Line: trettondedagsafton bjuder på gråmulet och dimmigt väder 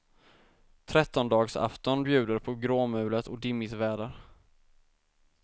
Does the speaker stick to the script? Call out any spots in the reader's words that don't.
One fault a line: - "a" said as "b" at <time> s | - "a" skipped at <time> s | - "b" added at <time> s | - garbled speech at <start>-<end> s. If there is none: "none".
none